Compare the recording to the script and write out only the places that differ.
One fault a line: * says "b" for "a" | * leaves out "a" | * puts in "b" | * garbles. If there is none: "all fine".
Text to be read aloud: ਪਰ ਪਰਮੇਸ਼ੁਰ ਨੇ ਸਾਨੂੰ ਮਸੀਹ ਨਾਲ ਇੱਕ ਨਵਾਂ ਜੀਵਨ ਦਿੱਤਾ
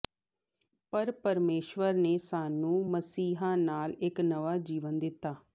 all fine